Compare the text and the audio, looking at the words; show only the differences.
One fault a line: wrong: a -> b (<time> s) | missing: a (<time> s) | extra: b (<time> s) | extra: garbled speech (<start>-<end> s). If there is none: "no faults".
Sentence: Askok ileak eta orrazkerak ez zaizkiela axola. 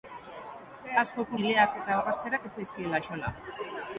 no faults